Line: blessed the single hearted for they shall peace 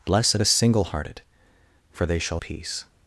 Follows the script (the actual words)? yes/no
yes